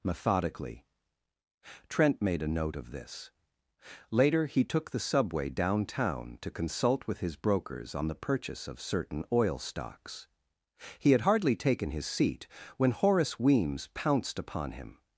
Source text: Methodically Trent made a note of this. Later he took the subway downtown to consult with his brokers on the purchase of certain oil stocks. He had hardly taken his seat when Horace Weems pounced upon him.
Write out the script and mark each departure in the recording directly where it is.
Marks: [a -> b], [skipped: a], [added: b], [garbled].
Methodically Trent made a note of this. Later he took the subway downtown to consult with his brokers on the purchase of certain oil stocks. He had hardly taken his seat when Horace Weems pounced upon him.